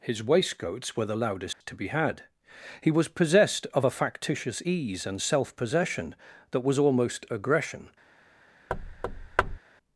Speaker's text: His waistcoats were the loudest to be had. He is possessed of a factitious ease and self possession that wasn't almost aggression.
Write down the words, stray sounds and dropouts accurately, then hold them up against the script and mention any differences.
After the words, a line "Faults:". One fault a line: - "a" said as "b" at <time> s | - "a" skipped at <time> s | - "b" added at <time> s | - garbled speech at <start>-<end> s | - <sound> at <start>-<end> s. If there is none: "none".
His waistcoats were the loudest to be had. He was possessed of a factitious ease and self possession that was almost aggression.
Faults:
- dropout at 1.5-1.6 s
- "is" said as "was" at 2.9 s
- "wasn't" said as "was" at 6.6 s
- thud at 8.7-9.6 s